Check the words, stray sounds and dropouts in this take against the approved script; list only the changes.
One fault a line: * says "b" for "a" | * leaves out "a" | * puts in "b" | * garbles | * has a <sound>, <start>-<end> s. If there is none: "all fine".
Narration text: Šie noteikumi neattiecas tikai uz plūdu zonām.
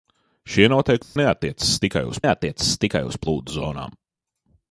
* has a dropout, 1.0-1.2 s
* puts in "neattiecas tikai uz"